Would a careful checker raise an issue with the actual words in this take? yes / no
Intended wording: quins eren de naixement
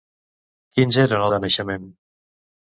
no